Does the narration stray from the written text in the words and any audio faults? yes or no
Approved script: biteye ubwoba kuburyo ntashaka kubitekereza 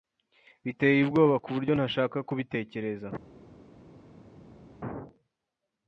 no